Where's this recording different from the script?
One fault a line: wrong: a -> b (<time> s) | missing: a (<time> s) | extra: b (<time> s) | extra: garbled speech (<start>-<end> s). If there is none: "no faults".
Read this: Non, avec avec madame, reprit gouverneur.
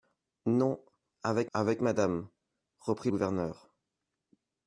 no faults